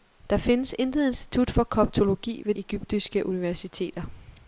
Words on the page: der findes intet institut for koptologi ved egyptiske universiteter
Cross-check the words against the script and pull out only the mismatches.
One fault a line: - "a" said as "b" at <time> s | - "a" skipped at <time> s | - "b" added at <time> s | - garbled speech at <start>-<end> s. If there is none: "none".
none